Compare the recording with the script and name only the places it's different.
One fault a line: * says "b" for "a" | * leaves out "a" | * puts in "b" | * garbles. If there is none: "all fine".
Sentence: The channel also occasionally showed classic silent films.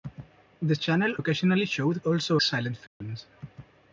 * leaves out "also"
* says "also" for "classic"